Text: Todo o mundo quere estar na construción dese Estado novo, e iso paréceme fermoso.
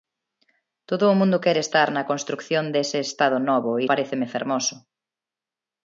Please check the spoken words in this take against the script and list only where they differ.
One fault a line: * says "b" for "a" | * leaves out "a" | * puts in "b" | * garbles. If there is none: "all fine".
* leaves out "iso"